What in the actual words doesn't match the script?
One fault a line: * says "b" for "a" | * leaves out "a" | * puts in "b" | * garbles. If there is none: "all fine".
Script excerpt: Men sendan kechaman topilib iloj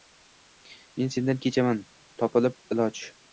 all fine